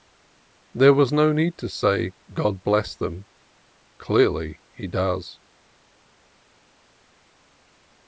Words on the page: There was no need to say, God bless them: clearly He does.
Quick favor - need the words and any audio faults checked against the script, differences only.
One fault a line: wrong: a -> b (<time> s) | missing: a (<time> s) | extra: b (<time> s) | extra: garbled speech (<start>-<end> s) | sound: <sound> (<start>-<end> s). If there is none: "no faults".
no faults